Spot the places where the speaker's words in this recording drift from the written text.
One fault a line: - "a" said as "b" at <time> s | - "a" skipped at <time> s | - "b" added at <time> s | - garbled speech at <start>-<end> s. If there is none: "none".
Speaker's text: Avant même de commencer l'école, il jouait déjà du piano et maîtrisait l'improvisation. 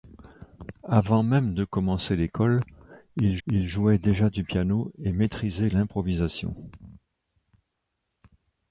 - "il" added at 3.5 s